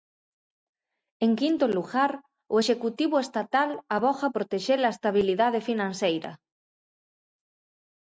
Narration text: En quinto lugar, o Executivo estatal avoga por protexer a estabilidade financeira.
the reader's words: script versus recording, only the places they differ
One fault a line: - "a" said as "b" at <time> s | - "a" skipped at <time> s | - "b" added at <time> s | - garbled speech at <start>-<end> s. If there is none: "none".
- "por" skipped at 4.3 s